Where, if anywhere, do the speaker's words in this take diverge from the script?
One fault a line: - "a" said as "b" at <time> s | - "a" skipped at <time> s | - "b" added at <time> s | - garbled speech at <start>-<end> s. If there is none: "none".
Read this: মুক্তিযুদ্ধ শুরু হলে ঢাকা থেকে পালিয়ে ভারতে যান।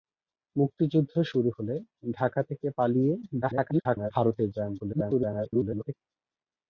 - garbled speech at 3.4-4.1 s
- garbled speech at 4.8-5.9 s